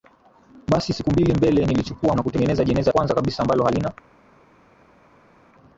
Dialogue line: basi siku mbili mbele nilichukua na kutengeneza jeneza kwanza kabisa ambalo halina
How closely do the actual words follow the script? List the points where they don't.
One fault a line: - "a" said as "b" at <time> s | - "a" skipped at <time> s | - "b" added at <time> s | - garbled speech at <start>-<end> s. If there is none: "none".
none